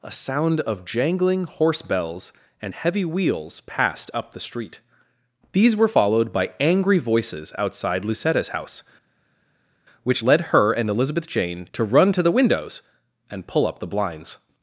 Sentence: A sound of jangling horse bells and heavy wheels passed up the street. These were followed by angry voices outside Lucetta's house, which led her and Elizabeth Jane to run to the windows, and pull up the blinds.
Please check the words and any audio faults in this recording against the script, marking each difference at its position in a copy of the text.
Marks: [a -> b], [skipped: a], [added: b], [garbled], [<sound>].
A sound of jangling horse bells and heavy wheels passed up the street. These were followed by angry voices outside Lucetta's house, which led her and Elizabeth Jane to run to the windows, and pull up the blinds.